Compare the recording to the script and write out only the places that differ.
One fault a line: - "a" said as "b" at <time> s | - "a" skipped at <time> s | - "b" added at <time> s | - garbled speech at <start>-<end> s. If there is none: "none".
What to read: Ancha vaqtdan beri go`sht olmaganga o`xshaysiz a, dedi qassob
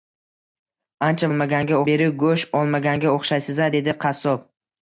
- "vaqtdan" said as "olmaganga" at 1.3 s